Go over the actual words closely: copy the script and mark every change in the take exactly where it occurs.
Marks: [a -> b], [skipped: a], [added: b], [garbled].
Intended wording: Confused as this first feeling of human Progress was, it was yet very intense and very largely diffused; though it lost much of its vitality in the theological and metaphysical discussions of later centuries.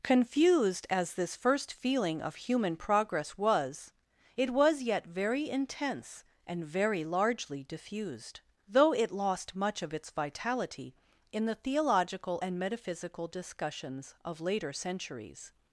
Confused as this first feeling of human Progress was, it was yet very intense and very largely diffused; though it lost much of its vitality in the theological and metaphysical discussions of later centuries.